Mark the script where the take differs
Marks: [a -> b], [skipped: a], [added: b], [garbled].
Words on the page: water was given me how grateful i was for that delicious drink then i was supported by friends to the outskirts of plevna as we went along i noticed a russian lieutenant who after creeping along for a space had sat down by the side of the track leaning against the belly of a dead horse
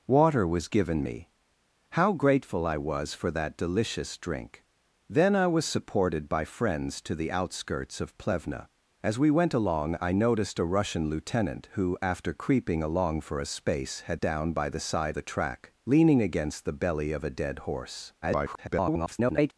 water was given me how grateful i was for that delicious drink then i was supported by friends to the outskirts of plevna as we went along i noticed a russian lieutenant who after creeping along for a space had [skipped: sat] down by the side [skipped: of] the track leaning against the belly of a dead horse [garbled]